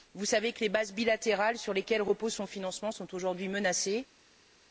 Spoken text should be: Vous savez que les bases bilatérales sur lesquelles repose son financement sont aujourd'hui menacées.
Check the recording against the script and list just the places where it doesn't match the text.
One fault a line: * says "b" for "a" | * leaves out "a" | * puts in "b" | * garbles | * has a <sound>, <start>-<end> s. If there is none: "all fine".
all fine